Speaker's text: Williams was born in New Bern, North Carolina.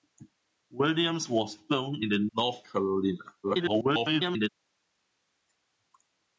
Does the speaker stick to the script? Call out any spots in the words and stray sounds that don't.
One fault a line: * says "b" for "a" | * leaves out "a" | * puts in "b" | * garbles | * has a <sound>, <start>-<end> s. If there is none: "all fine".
* leaves out "New Bern"
* garbles